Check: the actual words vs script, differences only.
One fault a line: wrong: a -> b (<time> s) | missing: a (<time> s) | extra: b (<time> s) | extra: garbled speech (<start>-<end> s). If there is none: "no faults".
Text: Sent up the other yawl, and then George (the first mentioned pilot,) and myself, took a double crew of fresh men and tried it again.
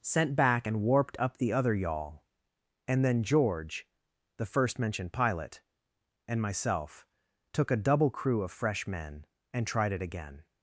extra: back and warped (0.3 s)